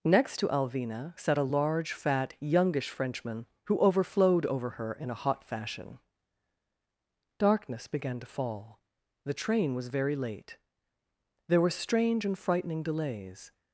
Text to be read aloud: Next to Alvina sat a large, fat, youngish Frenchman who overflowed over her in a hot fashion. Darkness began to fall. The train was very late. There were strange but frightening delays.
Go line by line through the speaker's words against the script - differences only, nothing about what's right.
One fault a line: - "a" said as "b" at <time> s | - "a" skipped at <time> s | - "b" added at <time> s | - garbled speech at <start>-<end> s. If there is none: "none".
- "but" said as "and" at 12.2 s